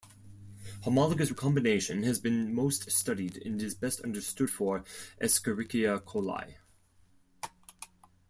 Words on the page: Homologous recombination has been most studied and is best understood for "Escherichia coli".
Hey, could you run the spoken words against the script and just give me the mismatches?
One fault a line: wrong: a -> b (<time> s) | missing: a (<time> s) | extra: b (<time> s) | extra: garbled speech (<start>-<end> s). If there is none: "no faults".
no faults